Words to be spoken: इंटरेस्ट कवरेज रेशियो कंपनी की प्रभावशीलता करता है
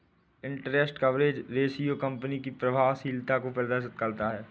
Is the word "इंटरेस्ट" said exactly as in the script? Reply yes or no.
yes